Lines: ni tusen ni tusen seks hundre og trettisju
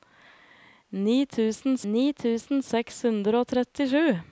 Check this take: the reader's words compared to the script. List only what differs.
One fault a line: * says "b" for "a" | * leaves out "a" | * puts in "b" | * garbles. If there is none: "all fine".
all fine